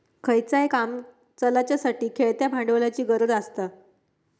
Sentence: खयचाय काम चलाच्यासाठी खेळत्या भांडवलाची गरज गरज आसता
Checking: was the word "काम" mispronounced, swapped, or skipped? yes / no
no